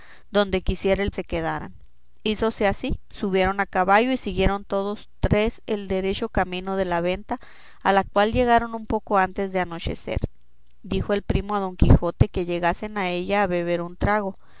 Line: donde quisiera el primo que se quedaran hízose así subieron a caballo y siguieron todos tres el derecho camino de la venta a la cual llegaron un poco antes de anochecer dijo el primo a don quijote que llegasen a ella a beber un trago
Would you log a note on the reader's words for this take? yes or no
yes